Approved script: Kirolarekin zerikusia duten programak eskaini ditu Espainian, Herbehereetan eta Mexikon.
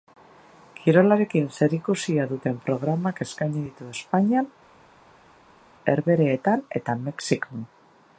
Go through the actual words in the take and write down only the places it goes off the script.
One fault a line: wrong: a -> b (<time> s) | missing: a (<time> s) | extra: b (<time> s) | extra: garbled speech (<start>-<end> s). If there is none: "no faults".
no faults